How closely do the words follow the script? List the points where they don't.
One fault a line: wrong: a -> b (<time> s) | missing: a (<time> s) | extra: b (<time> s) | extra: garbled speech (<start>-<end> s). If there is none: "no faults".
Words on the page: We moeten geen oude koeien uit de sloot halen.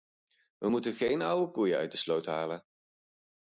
no faults